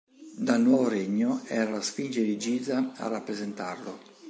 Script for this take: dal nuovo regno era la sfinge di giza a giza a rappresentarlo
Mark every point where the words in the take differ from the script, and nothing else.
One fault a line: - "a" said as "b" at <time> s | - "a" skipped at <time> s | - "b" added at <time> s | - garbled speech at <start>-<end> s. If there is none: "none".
- "giza a" skipped at 3.1 s